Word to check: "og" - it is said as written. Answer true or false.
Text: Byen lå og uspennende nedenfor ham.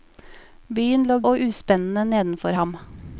true